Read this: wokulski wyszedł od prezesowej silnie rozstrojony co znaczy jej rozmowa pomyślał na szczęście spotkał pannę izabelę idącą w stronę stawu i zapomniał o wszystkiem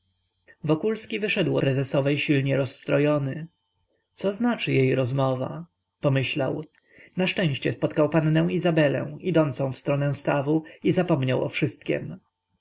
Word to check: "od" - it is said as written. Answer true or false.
false